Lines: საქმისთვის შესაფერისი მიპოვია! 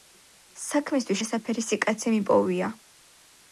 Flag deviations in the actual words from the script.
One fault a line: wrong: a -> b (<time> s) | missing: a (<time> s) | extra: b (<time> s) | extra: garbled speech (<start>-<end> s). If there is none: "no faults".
extra: კაცი (1.9 s)